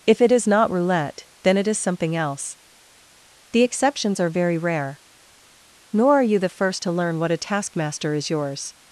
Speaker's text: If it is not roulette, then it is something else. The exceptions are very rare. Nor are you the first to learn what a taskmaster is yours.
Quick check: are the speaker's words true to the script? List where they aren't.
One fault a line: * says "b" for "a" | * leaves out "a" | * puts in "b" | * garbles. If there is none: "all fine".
all fine